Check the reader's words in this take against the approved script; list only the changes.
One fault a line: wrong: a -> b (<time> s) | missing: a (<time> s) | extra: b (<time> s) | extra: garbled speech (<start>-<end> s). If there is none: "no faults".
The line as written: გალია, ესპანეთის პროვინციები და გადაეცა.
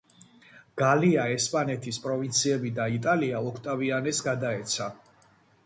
extra: იტალია ოქტავიანეს (2.9 s)